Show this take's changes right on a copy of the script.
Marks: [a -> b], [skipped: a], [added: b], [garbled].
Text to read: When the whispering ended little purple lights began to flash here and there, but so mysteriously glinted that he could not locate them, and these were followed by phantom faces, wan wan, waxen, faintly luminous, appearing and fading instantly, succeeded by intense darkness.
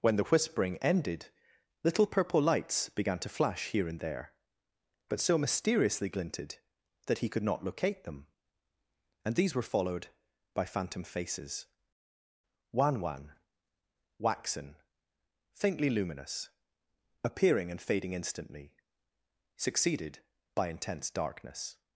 When the whispering ended little purple lights began to flash here and there, but so mysteriously glinted that he could not locate them, and these were followed by phantom faces, wan wan, waxen, faintly luminous, appearing and fading instantly, succeeded by intense darkness.